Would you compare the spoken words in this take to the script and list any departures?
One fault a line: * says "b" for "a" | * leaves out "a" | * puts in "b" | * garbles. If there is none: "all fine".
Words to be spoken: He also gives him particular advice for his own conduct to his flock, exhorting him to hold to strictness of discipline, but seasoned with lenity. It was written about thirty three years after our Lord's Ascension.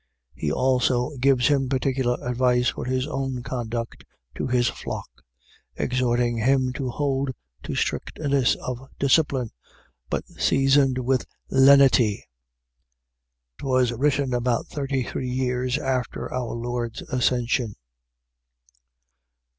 * leaves out "It"